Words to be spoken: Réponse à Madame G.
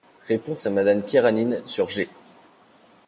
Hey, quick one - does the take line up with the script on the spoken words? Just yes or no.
no